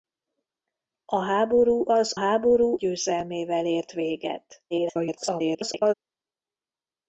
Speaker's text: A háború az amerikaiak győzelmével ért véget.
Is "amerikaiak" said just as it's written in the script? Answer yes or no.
no